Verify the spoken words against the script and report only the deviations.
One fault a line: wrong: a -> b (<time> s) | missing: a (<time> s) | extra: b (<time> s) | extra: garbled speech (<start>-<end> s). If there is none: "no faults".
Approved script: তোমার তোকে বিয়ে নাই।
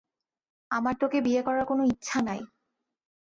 wrong: তোমার -> আমার (0.7 s)
extra: করার কোনো ইচ্ছা (1.4 s)